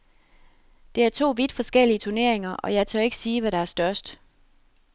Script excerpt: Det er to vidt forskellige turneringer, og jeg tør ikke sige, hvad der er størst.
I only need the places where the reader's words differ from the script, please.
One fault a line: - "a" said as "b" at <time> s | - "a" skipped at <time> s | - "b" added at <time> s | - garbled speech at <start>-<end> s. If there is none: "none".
none